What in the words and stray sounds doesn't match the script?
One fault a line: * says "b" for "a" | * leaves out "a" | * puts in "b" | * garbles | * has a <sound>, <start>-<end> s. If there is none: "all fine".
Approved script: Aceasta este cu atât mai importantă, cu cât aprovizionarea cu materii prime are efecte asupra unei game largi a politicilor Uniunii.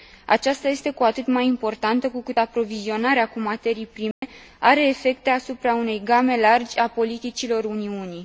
* has a dropout, 4.1-4.2 s